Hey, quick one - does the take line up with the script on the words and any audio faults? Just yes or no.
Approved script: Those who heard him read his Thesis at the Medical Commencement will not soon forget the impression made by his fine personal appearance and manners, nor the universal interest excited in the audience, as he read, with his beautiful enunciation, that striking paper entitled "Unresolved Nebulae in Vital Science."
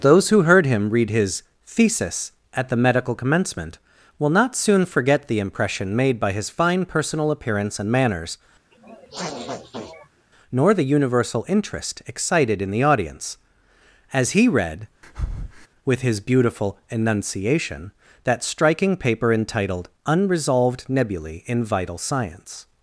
no